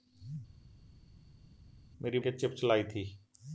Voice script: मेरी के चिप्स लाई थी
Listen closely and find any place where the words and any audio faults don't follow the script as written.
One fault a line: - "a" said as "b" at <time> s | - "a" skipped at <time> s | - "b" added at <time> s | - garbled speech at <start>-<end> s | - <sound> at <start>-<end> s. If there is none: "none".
none